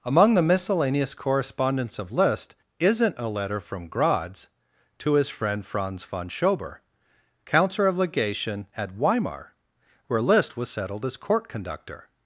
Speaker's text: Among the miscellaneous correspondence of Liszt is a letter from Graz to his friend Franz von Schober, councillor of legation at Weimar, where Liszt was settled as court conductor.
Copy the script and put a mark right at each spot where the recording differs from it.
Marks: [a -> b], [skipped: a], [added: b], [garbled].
Among the miscellaneous correspondence of Liszt [is -> isn't] a letter from Graz to his friend Franz von Schober, councillor of legation at Weimar, where Liszt was settled as court conductor.